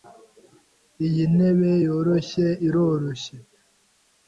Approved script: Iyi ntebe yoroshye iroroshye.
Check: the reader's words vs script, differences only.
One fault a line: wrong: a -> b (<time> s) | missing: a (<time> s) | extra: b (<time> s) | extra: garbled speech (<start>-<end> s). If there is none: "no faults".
no faults